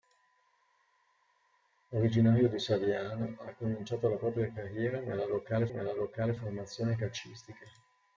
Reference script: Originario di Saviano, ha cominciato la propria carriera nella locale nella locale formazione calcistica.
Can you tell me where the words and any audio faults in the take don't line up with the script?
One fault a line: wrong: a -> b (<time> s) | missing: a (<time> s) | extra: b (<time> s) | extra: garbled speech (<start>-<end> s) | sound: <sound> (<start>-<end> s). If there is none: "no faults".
no faults